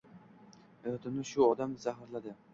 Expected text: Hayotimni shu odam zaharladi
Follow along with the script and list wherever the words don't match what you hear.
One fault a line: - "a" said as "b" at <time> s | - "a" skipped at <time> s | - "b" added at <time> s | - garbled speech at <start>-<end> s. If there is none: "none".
none